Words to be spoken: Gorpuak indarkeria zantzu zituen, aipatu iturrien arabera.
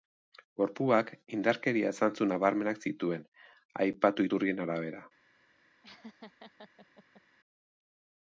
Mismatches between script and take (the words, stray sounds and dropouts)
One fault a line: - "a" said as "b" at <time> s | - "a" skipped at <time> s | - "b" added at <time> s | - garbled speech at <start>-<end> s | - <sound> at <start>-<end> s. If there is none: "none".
- "nabarmenak" added at 2.3 s
- laugh at 5.8-7.2 s